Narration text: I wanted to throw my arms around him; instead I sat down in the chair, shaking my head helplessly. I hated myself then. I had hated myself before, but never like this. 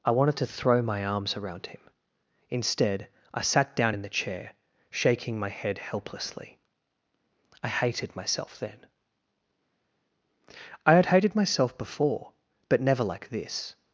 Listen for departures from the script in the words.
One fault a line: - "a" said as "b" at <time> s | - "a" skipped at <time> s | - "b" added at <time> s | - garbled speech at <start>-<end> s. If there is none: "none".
none